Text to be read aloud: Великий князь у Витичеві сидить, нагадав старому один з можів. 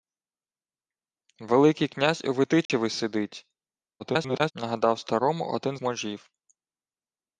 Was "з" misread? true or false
true